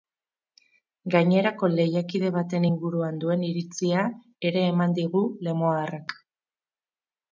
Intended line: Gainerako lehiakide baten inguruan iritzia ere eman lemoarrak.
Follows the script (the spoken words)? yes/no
no